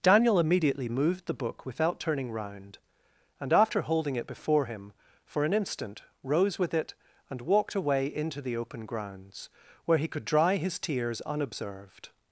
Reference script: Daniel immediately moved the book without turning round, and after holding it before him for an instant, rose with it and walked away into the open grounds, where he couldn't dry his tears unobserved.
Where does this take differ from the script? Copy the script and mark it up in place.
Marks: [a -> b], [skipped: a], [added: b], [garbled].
Daniel immediately moved the book without turning round, and after holding it before him for an instant, rose with it and walked away into the open grounds, where he [couldn't -> could] dry his tears unobserved.